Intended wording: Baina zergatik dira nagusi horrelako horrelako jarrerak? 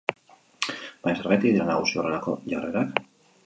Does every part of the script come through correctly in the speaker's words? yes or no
no